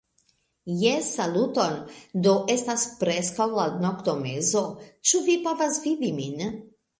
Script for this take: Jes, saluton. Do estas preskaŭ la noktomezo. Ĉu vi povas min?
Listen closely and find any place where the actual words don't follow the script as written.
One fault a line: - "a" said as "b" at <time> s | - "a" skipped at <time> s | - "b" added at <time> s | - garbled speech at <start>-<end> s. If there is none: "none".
- "vidi" added at 5.8 s